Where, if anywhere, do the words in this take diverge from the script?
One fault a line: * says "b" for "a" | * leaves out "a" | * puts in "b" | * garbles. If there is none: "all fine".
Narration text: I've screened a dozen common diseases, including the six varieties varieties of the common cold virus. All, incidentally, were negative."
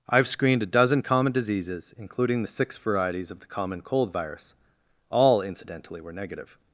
* leaves out "varieties"